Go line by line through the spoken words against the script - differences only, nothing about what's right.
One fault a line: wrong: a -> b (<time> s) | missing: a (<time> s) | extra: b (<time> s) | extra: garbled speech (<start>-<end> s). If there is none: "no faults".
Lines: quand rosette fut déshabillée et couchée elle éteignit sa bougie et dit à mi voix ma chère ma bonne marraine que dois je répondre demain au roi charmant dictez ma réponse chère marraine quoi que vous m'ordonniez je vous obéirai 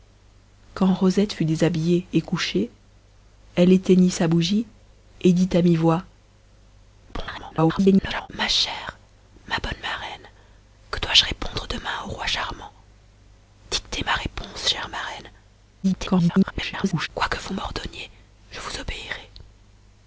extra: garbled speech (7.1-8.3 s)
extra: garbled speech (15.8-17.1 s)